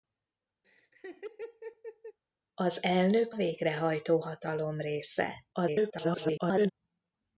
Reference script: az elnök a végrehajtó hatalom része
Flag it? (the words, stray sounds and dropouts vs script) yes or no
yes